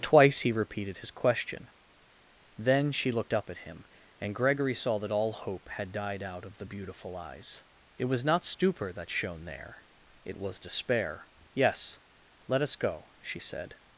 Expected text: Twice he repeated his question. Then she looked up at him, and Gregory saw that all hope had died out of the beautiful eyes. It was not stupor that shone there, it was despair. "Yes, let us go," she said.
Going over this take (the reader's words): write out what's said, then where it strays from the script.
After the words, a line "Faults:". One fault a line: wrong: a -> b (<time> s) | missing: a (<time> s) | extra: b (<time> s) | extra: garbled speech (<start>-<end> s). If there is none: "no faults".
Twice he repeated his question. Then she looked up at him, and Gregory saw that all hope had died out of the beautiful eyes. It was not stupor that shone there, it was despair. "Yes, let us go," she said.
Faults:
no faults